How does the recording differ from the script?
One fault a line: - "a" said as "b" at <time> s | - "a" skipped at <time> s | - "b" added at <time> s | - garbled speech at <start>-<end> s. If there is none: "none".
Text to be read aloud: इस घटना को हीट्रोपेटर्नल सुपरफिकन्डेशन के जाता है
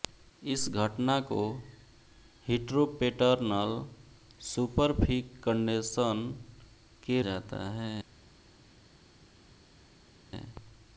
none